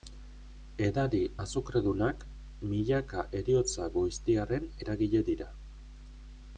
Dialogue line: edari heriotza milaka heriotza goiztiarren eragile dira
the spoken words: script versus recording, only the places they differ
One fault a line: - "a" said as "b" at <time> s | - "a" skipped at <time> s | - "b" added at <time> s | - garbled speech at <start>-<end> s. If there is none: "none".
- "heriotza" said as "azukredunak" at 1.4 s